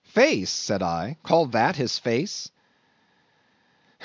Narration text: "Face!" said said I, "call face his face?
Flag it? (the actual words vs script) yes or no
yes